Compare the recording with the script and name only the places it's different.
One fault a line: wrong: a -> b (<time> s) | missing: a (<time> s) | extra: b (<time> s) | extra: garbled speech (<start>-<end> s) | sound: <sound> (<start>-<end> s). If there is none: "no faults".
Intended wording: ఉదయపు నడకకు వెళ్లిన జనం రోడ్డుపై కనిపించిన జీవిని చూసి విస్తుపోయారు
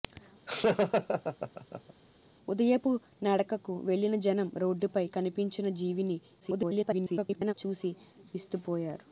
sound: laugh (0.5-1.9 s)
extra: garbled speech (6.4-7.5 s)